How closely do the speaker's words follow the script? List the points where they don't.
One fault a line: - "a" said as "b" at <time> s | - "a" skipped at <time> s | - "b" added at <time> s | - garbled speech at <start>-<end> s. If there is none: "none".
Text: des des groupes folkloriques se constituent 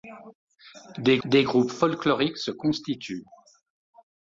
none